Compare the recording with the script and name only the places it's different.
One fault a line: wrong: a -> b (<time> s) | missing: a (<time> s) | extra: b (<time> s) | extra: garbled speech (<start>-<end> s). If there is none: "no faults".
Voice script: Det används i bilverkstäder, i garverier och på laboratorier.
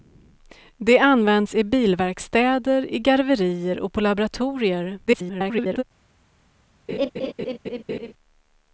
extra: garbled speech (5.1-5.8 s)